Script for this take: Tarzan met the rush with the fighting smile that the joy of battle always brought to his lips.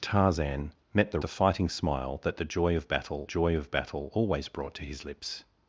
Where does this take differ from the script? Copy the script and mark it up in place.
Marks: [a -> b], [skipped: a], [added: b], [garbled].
Tarzan met the [skipped: rush with] the fighting smile that the joy of battle [added: joy of battle] always brought to his lips.